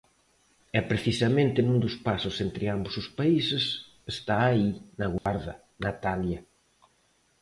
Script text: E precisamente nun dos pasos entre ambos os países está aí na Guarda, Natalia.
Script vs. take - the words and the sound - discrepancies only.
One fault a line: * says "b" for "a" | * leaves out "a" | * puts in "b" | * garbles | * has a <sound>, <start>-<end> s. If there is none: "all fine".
* has a dropout, 5.2-5.3 s